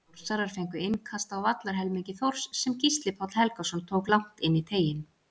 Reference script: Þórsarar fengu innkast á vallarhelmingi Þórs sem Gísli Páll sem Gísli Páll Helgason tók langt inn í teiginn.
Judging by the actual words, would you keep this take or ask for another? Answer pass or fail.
fail